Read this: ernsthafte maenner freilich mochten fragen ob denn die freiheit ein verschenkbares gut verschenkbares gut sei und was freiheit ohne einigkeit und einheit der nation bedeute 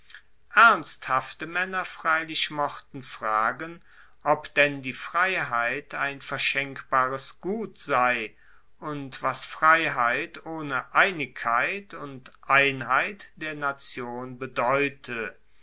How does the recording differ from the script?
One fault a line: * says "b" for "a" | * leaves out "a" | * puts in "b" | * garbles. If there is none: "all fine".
* leaves out "verschenkbares gut"